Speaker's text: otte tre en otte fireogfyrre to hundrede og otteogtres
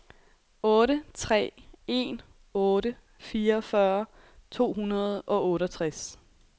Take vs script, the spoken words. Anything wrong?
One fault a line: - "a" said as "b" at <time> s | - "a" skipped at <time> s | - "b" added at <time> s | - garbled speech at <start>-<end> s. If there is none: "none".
none